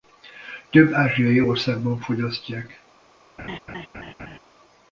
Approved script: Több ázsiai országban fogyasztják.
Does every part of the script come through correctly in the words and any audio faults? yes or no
no